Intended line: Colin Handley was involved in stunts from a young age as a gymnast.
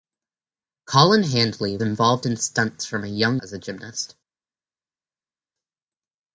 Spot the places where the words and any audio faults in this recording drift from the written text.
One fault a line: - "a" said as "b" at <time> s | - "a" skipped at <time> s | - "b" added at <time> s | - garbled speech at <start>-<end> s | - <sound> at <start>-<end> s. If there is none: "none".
- "was" skipped at 1.8 s
- "age" skipped at 3.4 s